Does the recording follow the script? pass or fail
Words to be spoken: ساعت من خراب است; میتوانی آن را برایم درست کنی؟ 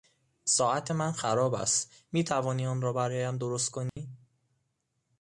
pass